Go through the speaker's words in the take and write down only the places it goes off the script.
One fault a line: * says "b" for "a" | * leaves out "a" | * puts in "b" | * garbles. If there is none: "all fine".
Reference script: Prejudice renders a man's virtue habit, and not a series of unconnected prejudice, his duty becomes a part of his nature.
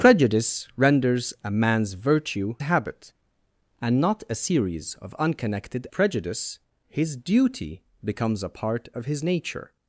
all fine